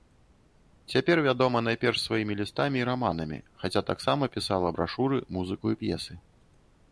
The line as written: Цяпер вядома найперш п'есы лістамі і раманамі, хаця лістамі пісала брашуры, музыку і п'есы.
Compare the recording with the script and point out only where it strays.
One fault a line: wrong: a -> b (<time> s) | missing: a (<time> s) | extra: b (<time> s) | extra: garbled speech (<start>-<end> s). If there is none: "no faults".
wrong: п'есы -> сваімі (2.0 s)
wrong: лістамі -> таксама (3.9 s)